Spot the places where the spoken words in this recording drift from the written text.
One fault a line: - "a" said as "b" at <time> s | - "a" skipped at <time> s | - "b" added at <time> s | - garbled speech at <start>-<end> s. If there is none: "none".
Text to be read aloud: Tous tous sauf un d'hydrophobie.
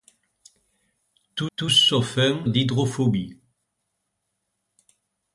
none